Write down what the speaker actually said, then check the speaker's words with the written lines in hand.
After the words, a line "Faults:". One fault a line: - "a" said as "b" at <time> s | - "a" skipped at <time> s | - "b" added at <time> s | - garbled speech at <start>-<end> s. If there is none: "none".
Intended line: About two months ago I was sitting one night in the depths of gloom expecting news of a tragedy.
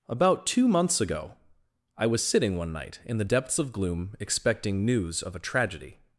About two months ago I was sitting one night in the depths of gloom expecting news of a tragedy.
Faults:
none